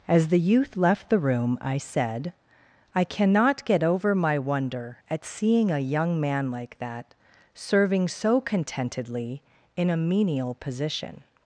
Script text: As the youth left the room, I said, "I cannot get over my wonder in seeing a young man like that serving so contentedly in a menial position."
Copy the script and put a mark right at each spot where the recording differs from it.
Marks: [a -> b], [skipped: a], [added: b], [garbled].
As the youth left the room, I said, "I cannot get over my wonder [in -> at] seeing a young man like that serving so contentedly in a menial position."